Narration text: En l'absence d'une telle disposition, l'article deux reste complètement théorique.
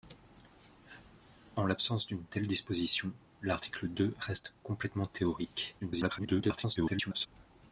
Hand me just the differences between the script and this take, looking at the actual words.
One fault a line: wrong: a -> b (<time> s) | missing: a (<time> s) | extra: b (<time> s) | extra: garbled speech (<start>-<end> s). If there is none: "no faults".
extra: garbled speech (5.8-7.3 s)